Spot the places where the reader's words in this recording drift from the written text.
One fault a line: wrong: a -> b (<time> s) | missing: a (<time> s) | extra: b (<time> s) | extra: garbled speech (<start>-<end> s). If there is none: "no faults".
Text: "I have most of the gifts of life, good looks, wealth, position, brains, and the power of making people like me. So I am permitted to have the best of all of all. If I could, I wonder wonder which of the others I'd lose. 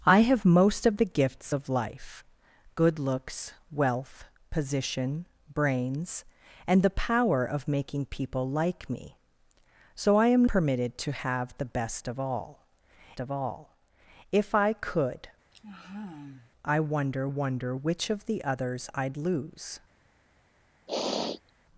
no faults